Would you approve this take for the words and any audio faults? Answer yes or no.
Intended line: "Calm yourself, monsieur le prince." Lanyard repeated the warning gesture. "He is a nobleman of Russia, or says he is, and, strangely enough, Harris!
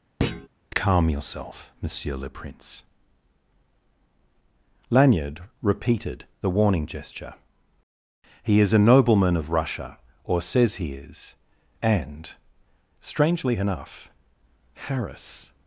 no